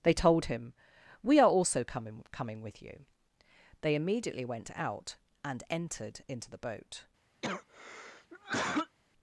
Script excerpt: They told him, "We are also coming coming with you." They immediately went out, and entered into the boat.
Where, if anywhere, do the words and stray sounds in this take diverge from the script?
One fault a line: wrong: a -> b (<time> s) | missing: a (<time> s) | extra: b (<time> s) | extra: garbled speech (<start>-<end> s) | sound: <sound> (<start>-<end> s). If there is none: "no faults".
sound: cough (7.4-9.0 s)